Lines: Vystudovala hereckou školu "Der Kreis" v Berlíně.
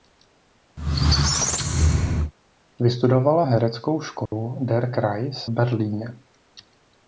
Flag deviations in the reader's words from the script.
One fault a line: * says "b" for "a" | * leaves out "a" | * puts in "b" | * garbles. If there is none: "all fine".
* leaves out "v"